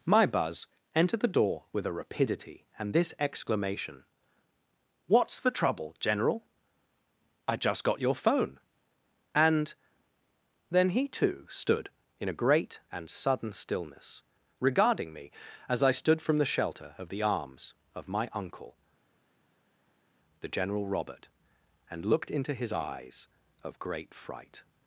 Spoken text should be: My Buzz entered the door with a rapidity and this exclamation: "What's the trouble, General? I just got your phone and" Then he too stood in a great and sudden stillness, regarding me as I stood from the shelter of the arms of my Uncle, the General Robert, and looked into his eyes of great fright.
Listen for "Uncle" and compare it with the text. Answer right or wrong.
right